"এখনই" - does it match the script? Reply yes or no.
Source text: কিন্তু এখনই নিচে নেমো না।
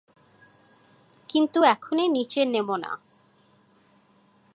yes